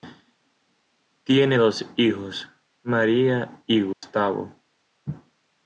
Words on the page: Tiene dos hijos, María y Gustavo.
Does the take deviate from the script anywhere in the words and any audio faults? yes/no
yes